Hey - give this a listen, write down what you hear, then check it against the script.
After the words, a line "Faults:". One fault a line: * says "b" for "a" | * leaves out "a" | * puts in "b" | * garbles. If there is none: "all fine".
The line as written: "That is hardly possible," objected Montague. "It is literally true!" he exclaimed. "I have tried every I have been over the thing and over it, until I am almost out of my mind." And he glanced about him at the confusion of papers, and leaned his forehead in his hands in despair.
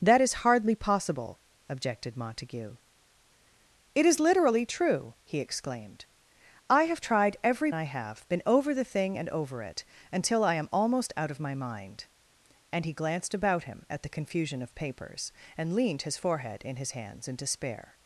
"That is hardly possible," objected Montague. "It is literally true!" he exclaimed. "I have tried every I have been over the thing and over it, until I am almost out of my mind." And he glanced about him at the confusion of papers, and leaned his forehead in his hands in despair.
Faults:
all fine